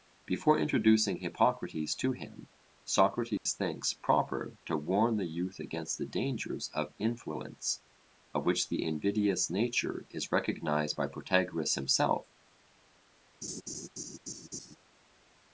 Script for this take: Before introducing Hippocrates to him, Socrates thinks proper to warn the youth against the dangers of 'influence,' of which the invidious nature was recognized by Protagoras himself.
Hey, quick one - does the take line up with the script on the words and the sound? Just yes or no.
no